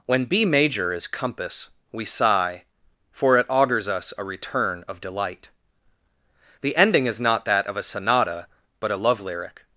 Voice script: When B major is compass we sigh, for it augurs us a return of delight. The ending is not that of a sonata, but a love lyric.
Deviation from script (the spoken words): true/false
false